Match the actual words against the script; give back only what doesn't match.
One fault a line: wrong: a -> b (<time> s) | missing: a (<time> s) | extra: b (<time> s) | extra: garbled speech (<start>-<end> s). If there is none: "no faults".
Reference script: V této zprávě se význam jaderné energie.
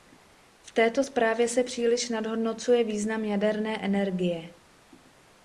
extra: příliš nadhodnocuje (1.6 s)